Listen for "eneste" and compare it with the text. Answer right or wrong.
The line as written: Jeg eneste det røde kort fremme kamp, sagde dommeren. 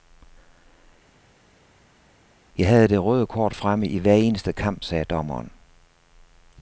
wrong